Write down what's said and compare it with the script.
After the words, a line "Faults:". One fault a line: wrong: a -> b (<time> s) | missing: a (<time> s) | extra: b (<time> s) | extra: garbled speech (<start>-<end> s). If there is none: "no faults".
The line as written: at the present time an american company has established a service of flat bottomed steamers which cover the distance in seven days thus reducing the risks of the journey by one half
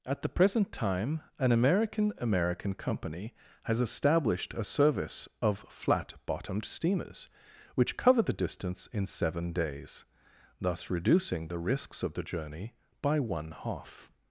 at the present time an american american company has established a service of flat bottomed steamers which cover the distance in seven days thus reducing the risks of the journey by one half
Faults:
extra: american (2.2 s)